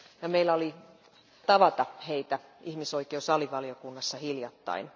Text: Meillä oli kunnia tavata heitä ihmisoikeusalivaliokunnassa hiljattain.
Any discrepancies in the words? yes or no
yes